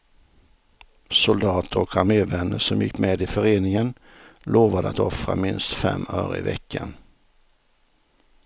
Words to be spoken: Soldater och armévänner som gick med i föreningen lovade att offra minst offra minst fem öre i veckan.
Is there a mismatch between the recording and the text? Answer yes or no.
yes